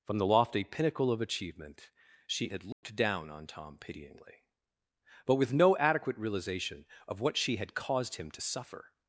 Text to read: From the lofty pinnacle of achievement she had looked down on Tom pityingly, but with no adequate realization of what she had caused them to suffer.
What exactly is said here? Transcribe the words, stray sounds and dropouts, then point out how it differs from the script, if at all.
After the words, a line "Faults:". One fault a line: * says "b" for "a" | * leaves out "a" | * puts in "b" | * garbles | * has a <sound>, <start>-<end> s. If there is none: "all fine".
From the lofty pinnacle of achievement she had looked down on Tom pityingly, but with no adequate realization of what she had caused him to suffer.
Faults:
* has a dropout, 2.7-2.8 s
* says "him" for "them"